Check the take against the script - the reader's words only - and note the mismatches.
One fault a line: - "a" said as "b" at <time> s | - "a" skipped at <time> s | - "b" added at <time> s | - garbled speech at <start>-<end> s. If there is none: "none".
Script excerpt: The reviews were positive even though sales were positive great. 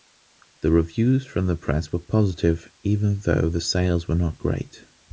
- "from the press" added at 1.3 s
- "the" added at 3.5 s
- "positive" said as "not" at 4.2 s